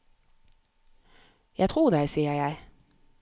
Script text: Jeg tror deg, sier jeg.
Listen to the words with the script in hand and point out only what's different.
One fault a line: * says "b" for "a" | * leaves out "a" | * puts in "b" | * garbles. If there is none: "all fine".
all fine